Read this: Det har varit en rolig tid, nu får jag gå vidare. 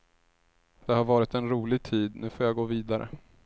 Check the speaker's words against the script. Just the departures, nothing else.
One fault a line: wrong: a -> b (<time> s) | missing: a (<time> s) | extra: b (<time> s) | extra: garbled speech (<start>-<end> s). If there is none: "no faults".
no faults